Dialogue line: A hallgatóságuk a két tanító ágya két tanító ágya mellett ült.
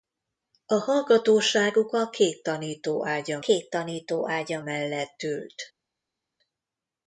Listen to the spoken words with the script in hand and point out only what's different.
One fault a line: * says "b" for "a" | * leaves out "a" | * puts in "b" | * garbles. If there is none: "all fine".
all fine